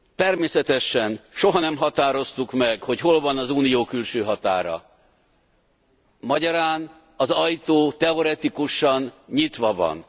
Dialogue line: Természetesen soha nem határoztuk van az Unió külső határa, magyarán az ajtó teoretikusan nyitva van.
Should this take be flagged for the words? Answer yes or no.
yes